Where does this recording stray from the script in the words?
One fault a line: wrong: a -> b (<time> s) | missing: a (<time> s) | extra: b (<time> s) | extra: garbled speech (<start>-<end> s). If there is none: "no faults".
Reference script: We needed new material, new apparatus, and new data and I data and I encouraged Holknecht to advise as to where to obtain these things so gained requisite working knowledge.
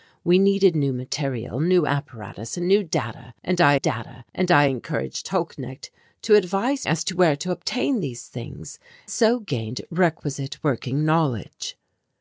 no faults